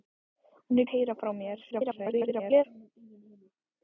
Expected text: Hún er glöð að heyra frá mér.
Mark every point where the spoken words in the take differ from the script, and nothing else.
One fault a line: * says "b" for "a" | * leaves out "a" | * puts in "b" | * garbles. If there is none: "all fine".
* leaves out "glöð"
* garbles